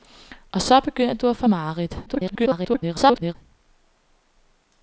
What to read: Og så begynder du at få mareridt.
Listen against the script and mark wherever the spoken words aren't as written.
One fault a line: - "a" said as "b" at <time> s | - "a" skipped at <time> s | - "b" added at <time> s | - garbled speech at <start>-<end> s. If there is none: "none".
- garbled speech at 2.1-3.3 s